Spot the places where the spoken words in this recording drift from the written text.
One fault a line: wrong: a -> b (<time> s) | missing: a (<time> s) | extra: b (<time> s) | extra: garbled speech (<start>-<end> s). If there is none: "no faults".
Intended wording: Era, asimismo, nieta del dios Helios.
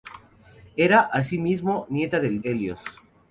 missing: dios (2.4 s)